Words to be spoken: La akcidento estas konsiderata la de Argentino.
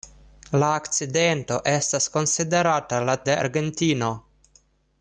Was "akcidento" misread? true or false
false